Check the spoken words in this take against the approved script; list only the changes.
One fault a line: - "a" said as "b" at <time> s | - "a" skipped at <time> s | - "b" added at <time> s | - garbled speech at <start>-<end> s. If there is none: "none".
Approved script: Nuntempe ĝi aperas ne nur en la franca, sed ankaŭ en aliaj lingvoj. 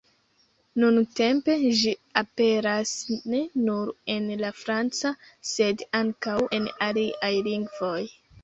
none